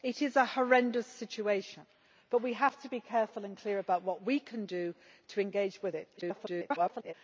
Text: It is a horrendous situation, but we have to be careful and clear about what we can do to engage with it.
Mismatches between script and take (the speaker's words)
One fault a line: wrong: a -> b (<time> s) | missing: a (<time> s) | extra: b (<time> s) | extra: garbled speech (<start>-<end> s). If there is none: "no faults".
extra: garbled speech (6.2-7.1 s)